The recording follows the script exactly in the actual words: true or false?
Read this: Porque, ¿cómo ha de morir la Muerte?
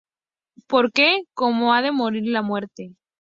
true